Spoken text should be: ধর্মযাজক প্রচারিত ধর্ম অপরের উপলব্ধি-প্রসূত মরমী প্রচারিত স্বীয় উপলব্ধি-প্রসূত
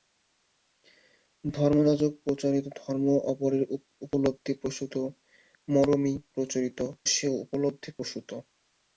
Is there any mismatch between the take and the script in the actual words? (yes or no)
no